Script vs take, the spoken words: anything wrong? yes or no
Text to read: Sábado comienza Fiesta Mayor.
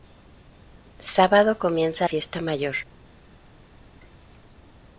no